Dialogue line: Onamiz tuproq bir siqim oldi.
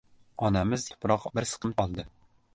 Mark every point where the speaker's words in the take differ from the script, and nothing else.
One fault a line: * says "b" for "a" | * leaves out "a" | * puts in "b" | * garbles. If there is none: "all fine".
all fine